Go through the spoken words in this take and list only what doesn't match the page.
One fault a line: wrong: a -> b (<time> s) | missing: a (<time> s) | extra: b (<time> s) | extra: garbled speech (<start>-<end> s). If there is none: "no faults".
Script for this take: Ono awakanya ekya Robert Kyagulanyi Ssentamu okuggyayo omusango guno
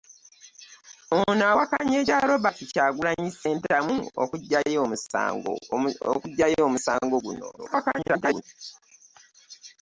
extra: garbled speech (7.6-8.4 s)